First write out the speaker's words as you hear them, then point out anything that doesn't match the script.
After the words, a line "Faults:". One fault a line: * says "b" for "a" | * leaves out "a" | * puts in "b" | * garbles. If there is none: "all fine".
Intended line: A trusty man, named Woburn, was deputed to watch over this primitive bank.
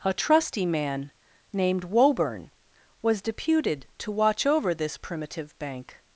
A trusty man, named Woburn, was deputed to watch over this primitive bank.
Faults:
all fine